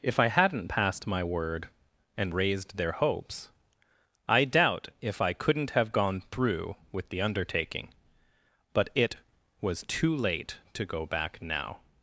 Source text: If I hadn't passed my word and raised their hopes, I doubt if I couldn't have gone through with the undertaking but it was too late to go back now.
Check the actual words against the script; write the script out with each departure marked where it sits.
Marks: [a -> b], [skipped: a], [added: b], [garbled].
If I hadn't passed my word and raised their hopes, I doubt if I couldn't have gone through with the undertaking but it was too late to go back now.